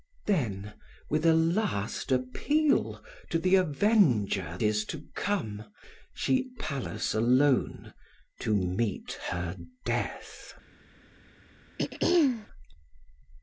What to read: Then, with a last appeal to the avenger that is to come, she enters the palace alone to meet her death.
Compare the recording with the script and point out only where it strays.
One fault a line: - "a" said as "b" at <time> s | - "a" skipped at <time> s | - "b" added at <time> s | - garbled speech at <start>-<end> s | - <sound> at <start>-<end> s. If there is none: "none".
- "that" skipped at 4.6 s
- "enters the" skipped at 6.5 s
- throat clearing at 11.8-12.5 s